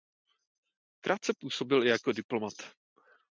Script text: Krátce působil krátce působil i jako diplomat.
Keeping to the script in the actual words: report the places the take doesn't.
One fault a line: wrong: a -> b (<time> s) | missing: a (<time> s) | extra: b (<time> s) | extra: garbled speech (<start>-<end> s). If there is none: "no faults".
missing: krátce působil (1.8 s)